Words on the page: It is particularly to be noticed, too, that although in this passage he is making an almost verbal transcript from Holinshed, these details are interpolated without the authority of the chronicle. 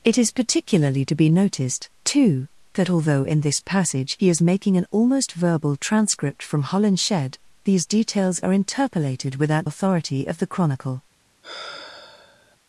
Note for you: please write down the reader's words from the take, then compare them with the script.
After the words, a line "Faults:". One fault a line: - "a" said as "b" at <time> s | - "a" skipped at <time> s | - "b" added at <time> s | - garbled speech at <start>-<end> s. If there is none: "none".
It is particularly to be noticed, too, that although in this passage he is making an almost verbal transcript from Holinshed, these details are interpolated without authority of the chronicle.
Faults:
- "the" skipped at 9.7 s